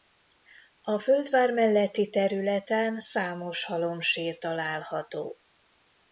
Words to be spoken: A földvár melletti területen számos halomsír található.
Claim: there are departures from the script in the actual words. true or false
false